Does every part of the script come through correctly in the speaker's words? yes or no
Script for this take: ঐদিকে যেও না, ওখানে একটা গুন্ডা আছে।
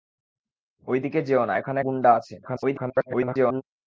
no